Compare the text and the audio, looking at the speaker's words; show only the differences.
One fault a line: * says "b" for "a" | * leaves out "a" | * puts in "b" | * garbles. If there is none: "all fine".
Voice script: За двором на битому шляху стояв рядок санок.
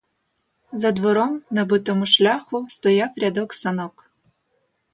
all fine